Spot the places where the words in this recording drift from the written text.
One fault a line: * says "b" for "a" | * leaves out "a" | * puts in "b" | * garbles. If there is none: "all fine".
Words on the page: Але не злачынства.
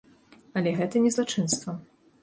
* puts in "гэта"